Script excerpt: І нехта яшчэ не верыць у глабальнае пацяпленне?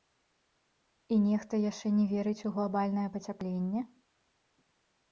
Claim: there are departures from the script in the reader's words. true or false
false